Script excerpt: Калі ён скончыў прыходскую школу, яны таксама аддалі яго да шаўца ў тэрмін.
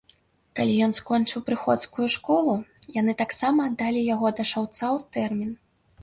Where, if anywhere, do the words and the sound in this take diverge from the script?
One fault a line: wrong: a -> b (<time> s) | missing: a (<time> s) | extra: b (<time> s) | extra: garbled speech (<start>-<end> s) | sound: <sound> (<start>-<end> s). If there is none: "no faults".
no faults